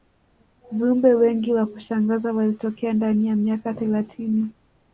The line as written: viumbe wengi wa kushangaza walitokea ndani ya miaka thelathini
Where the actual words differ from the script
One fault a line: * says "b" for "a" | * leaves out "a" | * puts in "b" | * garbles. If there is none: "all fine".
all fine